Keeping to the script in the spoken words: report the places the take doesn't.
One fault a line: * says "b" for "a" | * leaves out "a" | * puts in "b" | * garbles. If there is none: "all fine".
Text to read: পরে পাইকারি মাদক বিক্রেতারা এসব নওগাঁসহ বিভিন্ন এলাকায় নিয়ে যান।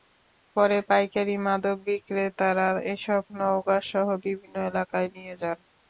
all fine